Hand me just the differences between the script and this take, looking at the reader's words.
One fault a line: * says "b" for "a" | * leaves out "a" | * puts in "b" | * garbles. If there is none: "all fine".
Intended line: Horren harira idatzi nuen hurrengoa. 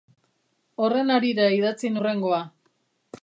* leaves out "nuen"